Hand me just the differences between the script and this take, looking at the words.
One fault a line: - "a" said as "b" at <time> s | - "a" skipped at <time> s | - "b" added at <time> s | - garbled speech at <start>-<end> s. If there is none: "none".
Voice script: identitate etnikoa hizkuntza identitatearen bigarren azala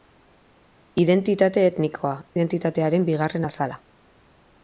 - "hizkuntza" skipped at 2.1 s